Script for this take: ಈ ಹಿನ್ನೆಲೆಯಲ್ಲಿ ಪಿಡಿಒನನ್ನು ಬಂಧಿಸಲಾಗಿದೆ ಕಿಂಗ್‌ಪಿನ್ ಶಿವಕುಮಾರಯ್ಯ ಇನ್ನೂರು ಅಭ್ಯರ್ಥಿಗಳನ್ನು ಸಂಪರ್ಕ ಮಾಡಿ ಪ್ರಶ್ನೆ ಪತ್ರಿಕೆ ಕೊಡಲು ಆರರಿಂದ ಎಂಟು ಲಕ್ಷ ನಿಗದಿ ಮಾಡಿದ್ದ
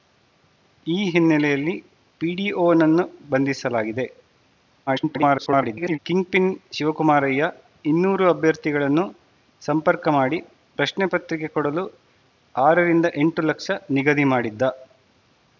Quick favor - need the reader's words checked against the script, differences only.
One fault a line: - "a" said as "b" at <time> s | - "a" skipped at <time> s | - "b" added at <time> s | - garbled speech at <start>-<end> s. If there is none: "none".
- garbled speech at 4.9-6.0 s